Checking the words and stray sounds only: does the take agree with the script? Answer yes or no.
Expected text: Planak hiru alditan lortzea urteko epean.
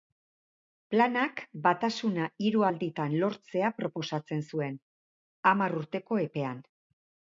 no